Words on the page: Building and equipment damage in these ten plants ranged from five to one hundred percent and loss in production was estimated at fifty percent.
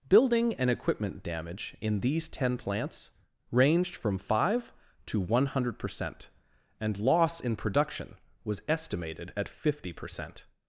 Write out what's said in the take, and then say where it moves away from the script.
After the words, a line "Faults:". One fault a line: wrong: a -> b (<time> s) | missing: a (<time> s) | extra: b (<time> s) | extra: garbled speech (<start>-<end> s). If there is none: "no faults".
Building and equipment damage in these ten plants ranged from five to one hundred percent and loss in production was estimated at fifty percent.
Faults:
no faults